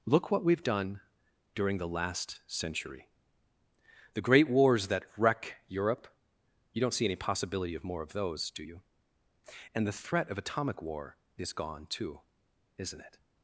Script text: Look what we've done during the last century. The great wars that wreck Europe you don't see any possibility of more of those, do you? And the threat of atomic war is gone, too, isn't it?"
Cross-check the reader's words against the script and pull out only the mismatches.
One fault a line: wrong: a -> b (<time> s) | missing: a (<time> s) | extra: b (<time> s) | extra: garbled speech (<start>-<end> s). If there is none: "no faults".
no faults